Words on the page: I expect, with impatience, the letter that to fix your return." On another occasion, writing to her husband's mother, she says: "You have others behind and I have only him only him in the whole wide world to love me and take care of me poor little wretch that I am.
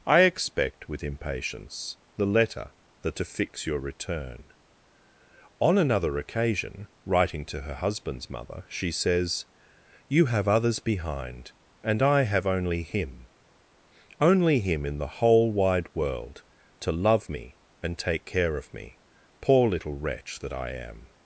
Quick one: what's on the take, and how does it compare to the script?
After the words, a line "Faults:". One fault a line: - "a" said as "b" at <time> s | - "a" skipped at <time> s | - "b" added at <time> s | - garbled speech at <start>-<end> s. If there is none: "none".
I expect, with impatience, the letter that to fix your return." On another occasion, writing to her husband's mother, she says: "You have others behind and I have only him only him in the whole wide world to love me and take care of me poor little wretch that I am.
Faults:
none